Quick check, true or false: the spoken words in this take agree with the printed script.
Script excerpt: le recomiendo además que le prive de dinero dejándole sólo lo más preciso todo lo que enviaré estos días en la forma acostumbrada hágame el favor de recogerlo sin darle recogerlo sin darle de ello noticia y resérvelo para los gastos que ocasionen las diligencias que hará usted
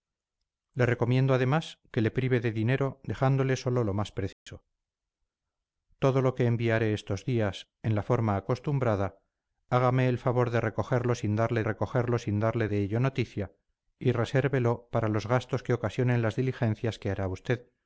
true